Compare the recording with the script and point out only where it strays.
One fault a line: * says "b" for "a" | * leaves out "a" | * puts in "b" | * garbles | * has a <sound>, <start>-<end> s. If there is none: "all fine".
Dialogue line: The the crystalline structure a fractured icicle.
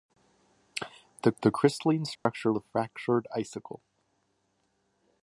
* has a dropout, 2.2-2.3 s